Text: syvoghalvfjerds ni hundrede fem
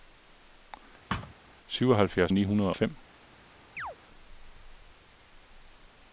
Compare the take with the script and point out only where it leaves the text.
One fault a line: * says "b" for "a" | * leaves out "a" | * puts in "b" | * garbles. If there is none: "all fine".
all fine